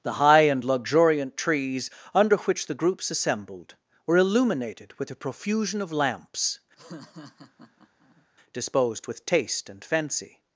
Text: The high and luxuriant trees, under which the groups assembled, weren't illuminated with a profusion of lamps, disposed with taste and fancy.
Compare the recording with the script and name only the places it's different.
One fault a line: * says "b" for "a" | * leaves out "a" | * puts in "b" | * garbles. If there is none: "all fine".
* says "were" for "weren't"